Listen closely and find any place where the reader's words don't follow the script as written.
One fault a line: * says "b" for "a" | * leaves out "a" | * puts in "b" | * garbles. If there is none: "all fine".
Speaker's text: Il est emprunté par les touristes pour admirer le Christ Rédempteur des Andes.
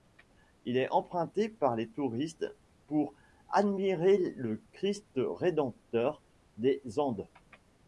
all fine